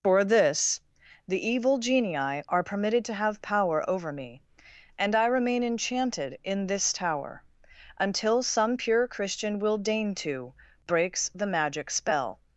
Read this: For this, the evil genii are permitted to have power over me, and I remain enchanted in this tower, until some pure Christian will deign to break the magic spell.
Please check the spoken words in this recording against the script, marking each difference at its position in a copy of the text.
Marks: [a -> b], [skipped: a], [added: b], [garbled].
For this, the evil genii are permitted to have power over me, and I remain enchanted in this tower, until some pure Christian will deign to [break -> breaks] the magic spell.